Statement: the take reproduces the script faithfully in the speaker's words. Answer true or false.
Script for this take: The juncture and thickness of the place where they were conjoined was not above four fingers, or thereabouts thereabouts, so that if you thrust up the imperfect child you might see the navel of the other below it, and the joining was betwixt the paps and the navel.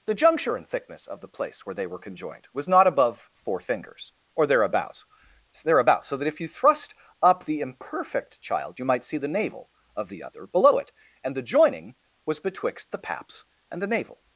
true